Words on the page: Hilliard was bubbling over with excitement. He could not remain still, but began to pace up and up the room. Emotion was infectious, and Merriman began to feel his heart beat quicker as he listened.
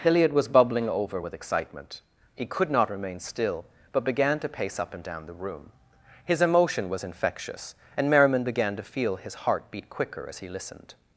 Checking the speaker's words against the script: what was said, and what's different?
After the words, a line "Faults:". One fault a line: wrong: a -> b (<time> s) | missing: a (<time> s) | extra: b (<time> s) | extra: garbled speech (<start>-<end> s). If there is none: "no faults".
Hilliard was bubbling over with excitement. He could not remain still, but began to pace up and down the room. His emotion was infectious, and Merriman began to feel his heart beat quicker as he listened.
Faults:
wrong: up -> down (5.0 s)
extra: His (6.2 s)